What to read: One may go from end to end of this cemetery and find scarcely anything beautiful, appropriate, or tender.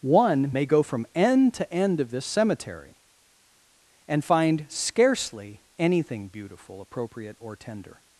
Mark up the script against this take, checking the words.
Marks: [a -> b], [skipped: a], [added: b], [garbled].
One may go from end to end of this cemetery and find scarcely anything beautiful, appropriate, or tender.